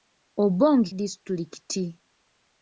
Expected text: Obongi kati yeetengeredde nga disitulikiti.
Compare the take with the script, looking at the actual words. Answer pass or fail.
fail